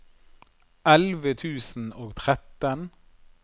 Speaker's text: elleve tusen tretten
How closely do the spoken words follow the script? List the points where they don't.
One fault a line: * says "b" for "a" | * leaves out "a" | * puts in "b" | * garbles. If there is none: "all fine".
* puts in "og"